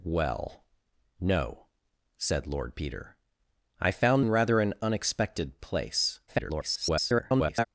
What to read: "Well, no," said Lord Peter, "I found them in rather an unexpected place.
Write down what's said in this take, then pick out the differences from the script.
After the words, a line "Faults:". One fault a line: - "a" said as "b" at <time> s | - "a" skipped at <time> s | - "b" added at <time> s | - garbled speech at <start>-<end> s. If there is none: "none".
"Well, no," said Lord Peter, "I found in rather an unexpected place. [garbled]
Faults:
- "them" skipped at 4.2 s
- garbled speech at 6.3-7.7 s